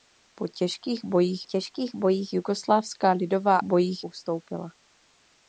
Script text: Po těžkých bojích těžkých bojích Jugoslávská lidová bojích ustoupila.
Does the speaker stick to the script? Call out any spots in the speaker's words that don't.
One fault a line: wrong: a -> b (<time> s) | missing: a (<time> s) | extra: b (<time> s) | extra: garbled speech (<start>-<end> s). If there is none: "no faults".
no faults